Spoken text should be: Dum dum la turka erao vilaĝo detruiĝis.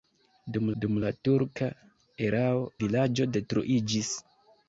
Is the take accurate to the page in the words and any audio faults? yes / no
yes